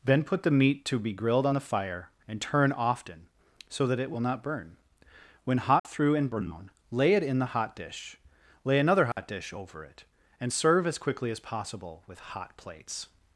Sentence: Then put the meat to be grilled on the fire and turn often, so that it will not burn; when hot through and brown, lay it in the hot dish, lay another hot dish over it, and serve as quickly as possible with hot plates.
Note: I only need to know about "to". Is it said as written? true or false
true